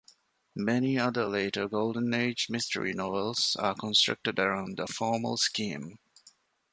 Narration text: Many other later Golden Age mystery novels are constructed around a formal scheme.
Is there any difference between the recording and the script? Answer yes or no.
no